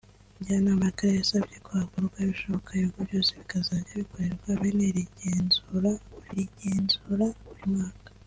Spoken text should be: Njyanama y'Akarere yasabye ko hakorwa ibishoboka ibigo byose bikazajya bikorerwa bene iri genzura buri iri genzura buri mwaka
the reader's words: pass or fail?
pass